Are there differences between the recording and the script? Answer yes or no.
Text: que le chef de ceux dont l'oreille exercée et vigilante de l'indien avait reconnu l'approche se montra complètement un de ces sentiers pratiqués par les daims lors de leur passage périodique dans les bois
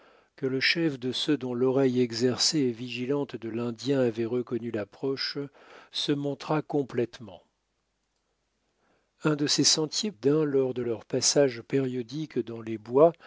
yes